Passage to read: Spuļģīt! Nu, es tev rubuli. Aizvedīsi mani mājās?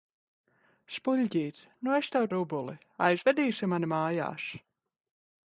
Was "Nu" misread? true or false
false